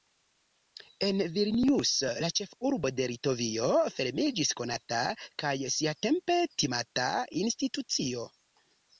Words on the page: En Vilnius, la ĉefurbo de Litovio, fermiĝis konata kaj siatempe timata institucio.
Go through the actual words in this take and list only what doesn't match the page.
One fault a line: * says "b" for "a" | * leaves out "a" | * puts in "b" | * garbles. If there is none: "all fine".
all fine